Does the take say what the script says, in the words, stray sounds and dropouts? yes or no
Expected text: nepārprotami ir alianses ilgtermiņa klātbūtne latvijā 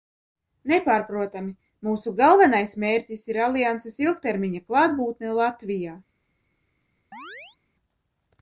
no